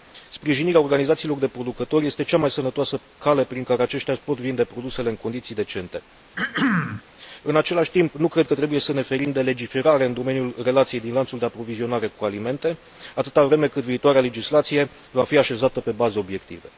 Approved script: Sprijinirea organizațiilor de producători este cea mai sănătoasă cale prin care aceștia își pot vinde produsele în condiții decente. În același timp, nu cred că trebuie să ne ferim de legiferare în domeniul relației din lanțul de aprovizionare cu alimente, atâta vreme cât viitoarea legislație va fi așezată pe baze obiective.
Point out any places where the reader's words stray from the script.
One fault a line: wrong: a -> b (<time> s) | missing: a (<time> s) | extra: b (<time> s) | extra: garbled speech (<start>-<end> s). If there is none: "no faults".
no faults